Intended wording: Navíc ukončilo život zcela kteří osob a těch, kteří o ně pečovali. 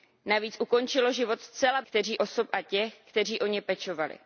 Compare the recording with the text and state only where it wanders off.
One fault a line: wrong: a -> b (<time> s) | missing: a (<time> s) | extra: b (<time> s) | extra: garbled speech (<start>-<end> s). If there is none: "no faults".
no faults